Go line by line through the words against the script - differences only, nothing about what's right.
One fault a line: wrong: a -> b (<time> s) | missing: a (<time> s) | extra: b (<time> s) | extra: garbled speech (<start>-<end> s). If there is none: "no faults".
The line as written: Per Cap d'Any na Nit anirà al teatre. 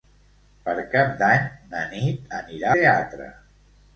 missing: al (2.7 s)